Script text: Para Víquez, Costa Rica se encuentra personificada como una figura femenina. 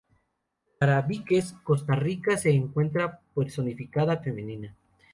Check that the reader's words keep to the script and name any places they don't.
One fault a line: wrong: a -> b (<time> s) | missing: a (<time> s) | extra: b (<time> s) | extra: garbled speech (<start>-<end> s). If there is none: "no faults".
missing: como una figura (4.2 s)